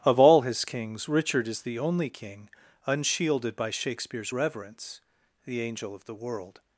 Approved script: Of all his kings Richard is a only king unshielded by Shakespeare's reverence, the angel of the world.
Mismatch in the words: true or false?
true